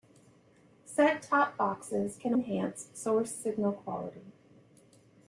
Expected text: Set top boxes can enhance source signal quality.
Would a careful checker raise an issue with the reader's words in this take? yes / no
no